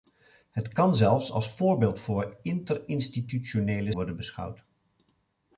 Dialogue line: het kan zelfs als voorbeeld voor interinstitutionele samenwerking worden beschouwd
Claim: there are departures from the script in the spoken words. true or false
true